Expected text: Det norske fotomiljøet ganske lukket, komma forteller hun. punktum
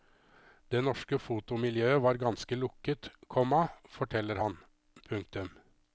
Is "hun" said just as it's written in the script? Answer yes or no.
no